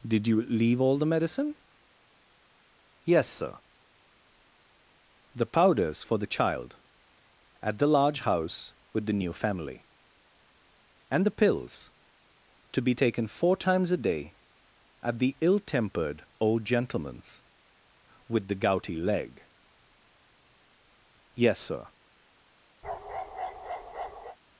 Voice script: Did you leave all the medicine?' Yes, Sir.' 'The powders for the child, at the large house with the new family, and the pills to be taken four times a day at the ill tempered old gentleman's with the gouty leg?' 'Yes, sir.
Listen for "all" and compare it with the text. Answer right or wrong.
right